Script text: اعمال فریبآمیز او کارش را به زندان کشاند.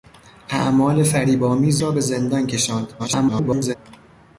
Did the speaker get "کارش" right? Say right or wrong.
wrong